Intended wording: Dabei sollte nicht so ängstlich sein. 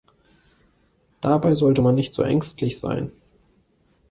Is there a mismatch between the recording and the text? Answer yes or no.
yes